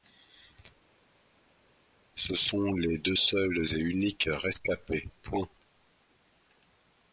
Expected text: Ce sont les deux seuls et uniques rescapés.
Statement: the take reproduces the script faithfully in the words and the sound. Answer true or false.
true